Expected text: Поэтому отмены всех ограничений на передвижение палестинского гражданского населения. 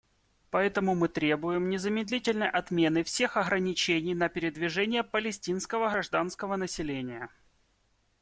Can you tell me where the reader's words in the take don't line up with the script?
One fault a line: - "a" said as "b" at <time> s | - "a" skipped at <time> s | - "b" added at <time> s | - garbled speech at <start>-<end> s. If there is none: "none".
- "мы требуем незамедлительной" added at 0.9 s